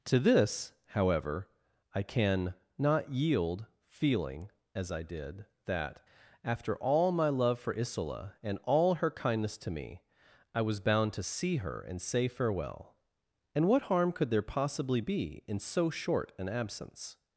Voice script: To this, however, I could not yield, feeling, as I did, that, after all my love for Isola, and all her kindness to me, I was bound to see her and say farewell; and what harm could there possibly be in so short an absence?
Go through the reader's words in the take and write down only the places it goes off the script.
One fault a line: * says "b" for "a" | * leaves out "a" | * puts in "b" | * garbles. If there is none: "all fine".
* says "can" for "could"